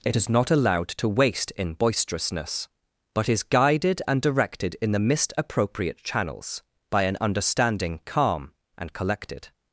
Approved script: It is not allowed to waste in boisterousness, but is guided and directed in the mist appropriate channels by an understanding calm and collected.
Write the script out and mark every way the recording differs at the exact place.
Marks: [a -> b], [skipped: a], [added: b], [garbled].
It is not allowed to waste in boisterousness, but is guided and directed in the mist appropriate channels by an understanding calm and collected.